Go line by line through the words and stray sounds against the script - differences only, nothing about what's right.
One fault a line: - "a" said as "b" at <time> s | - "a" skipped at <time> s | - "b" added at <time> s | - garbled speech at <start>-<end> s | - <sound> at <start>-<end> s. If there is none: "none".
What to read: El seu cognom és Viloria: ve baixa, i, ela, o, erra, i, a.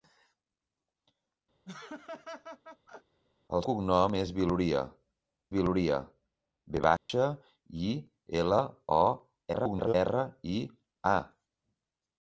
- laugh at 1.6-3.2 s
- "seu" skipped at 3.6 s
- "Viloria" added at 5.6 s
- dropout at 7.0-7.1 s
- garbled speech at 9.5-9.9 s